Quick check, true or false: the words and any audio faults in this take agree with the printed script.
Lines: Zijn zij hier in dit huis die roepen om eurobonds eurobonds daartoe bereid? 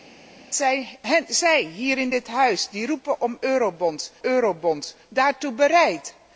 true